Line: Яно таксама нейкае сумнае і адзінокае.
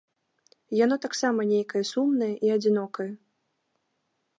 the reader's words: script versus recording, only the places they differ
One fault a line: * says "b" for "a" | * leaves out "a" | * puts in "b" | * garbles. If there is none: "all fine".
all fine